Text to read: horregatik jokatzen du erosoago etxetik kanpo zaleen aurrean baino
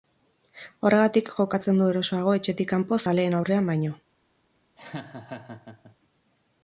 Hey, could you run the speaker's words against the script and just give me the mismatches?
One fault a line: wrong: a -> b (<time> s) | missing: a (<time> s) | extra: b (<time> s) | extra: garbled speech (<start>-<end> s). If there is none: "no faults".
no faults